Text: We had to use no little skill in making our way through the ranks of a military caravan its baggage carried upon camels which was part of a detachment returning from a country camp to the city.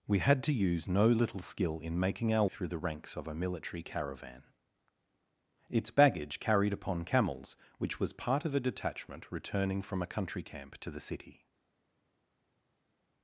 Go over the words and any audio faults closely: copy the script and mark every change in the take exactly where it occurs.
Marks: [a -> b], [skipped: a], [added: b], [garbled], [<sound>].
We had to use no little skill in making our [skipped: way] through the ranks of a military caravan its baggage carried upon camels which was part of a detachment returning from a country camp to the city.